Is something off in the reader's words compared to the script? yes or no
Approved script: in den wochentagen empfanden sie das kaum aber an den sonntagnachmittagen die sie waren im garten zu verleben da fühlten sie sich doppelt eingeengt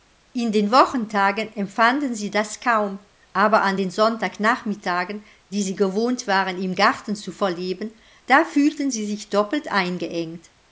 yes